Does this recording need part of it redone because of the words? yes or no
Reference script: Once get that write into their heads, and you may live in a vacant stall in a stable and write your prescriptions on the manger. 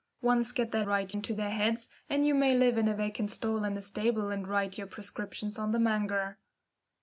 no